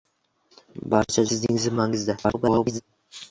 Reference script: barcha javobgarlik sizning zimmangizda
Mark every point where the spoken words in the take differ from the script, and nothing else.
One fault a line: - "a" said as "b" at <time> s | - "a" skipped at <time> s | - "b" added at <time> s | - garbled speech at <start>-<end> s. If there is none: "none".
- "javobgarlik" skipped at 1.2 s
- garbled speech at 2.2-2.8 s